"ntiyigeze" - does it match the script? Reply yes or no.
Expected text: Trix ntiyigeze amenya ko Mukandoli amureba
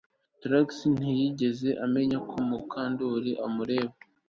yes